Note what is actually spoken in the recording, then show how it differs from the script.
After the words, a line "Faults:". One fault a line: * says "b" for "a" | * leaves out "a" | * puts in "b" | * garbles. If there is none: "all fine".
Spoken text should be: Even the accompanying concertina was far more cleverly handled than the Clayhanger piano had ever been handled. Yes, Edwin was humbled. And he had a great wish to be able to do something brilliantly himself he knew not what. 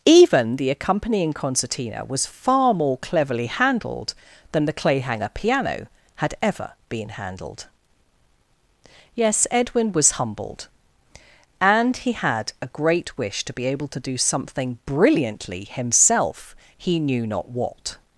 Even the accompanying concertina was far more cleverly handled than the Clayhanger piano had ever been handled. Yes, Edwin was humbled. And he had a great wish to be able to do something brilliantly himself he knew not what.
Faults:
all fine